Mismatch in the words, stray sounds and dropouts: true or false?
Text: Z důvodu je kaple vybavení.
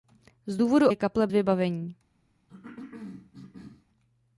true